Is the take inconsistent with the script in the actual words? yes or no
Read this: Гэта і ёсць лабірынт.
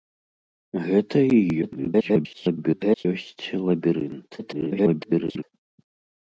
yes